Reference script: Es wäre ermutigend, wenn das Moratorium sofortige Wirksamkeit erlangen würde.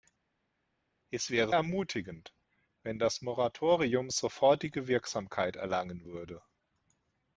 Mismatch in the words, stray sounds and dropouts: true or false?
false